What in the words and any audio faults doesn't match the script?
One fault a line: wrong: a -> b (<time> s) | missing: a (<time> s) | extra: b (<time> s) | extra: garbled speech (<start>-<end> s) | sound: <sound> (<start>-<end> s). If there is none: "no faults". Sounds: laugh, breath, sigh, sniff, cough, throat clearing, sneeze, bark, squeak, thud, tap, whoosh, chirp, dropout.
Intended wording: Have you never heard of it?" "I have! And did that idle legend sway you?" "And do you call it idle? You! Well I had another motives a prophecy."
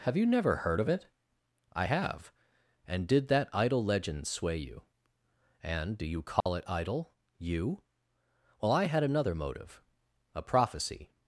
sound: dropout (6.4-6.5 s)
wrong: motives -> motive (9.3 s)